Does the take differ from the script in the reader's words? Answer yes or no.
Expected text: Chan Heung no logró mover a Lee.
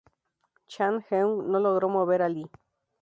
no